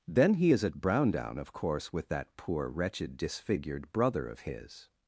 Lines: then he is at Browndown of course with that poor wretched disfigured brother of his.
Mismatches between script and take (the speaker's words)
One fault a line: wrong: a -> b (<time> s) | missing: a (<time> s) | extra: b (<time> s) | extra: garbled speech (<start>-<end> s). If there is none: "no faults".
no faults